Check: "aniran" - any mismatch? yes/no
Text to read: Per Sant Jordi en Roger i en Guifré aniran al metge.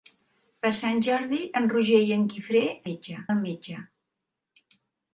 yes